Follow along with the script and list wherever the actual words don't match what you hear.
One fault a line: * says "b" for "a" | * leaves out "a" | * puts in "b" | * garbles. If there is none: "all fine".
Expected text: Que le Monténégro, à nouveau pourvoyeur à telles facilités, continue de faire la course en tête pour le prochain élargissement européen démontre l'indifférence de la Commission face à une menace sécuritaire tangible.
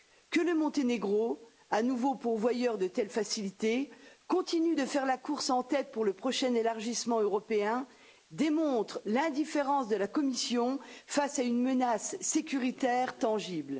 * says "de" for "à"